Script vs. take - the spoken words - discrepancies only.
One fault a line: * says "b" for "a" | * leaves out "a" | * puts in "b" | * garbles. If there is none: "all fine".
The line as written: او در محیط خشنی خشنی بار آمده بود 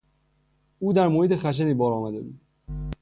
* leaves out "خشنی"